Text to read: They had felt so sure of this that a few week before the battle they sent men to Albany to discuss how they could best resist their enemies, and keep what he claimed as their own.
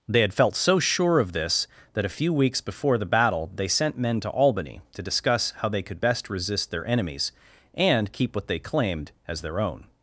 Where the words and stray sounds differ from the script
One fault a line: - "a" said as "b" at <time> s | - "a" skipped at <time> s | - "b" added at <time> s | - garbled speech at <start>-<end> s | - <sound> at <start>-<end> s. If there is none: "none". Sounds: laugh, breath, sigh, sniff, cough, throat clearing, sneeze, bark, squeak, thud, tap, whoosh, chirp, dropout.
- "week" said as "weeks" at 2.3 s
- "he" said as "they" at 8.5 s